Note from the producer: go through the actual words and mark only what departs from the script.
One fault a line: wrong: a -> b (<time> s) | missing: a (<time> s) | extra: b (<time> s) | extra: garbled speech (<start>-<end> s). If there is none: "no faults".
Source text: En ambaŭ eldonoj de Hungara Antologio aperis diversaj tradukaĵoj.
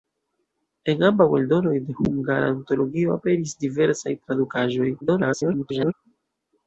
extra: garbled speech (5.0-5.9 s)